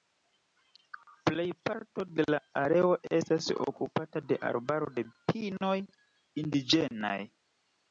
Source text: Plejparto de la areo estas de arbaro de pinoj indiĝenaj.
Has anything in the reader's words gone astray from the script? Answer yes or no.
yes